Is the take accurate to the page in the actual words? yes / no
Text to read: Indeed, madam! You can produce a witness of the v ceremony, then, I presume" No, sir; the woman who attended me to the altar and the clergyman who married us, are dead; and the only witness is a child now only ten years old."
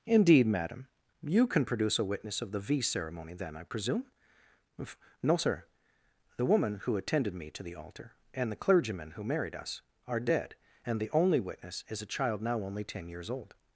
yes